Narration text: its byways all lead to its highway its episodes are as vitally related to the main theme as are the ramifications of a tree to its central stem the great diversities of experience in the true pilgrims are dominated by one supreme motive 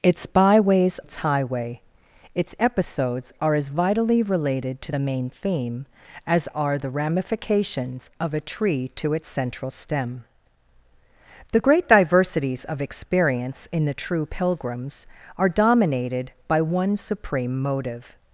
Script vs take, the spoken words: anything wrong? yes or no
yes